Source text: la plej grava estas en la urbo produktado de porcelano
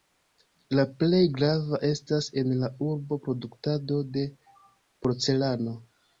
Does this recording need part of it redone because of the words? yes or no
no